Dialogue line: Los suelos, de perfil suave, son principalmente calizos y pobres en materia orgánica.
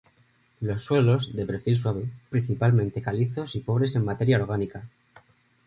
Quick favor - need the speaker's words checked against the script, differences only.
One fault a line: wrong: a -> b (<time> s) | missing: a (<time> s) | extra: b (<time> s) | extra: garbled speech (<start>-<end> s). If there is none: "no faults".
missing: son (2.1 s)